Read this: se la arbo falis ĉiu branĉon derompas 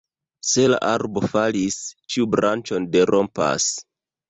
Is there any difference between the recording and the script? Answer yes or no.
no